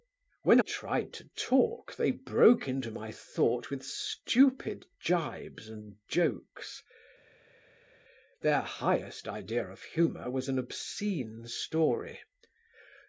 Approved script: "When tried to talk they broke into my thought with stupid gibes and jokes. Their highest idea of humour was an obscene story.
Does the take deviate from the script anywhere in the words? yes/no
no